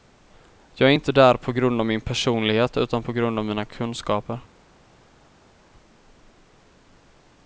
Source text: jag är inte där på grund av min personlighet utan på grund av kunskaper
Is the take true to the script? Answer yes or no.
no